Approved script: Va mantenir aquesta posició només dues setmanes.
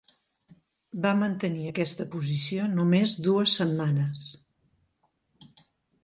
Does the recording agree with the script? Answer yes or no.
yes